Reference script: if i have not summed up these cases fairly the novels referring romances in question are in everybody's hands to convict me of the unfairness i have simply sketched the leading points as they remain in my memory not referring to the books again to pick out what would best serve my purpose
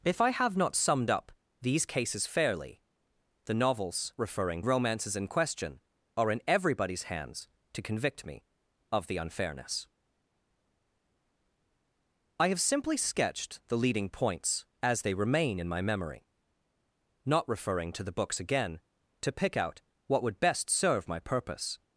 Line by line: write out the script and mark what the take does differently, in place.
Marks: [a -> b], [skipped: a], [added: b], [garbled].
if i have not summed up these cases fairly the novels referring romances in question are in everybody's hands to convict me of the unfairness i have simply sketched the leading points as they remain in my memory not referring to the books again to pick out what would best serve my purpose